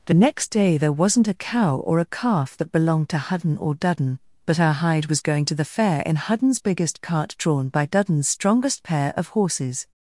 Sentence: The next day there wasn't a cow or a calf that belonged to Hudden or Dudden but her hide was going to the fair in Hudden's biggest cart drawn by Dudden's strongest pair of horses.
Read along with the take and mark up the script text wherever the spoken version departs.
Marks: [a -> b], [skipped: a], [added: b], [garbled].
The next day there wasn't a cow or a calf that belonged to Hudden or Dudden but her hide was going to the fair in Hudden's biggest cart drawn by Dudden's strongest pair of horses.